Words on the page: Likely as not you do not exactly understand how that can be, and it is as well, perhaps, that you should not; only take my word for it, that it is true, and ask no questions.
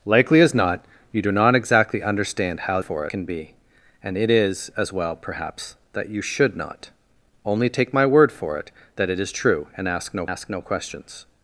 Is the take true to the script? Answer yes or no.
no